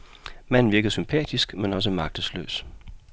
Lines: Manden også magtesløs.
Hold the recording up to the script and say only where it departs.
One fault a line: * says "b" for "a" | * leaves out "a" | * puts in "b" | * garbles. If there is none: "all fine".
* puts in "virkede sympatisk men"